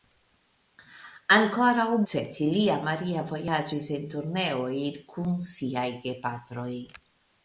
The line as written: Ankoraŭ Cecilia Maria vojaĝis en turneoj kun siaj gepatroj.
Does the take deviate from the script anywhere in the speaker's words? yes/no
no